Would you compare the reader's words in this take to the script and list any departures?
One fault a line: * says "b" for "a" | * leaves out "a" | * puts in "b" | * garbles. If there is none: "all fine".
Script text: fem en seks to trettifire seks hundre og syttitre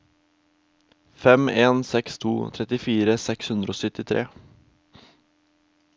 all fine